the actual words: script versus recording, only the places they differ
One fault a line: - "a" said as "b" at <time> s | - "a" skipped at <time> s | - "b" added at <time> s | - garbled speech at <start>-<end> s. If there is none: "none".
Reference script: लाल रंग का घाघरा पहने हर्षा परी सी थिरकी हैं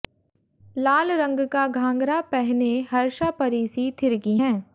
none